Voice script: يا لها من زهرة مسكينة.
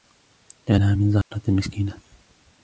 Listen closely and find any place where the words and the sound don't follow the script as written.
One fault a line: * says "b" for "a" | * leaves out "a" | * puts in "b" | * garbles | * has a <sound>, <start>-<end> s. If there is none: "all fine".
* has a dropout, 1.2-1.3 s